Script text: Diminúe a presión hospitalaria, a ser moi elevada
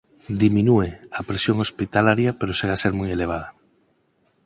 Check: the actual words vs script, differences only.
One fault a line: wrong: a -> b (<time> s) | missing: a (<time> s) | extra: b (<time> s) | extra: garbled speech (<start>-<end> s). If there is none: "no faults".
extra: pero segue (2.4 s)